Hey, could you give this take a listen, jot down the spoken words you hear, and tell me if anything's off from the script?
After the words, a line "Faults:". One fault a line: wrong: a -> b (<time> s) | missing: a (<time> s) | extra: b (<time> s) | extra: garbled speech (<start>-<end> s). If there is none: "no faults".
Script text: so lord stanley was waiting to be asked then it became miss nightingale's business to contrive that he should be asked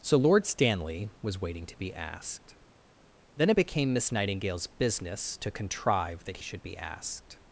so lord stanley was waiting to be asked then it became miss nightingale's business to contrive that should be asked
Faults:
missing: he (6.4 s)